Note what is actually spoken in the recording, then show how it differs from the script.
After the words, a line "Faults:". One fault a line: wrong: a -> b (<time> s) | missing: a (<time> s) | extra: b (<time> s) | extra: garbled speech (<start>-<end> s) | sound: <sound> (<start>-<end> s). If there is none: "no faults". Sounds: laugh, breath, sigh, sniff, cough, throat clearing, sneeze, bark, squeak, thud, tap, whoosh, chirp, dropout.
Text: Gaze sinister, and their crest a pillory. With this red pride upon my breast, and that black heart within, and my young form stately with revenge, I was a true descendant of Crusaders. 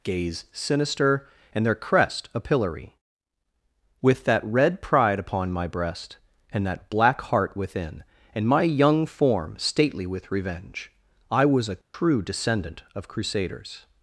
Gaze sinister, and their crest a pillory. With that red pride upon my breast, and that black heart within, and my young form stately with revenge, I was a true descendant of Crusaders.
Faults:
wrong: this -> that (4.2 s)
sound: dropout (11.8-11.9 s)